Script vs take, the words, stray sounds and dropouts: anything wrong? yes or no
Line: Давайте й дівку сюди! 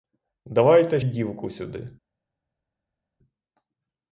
no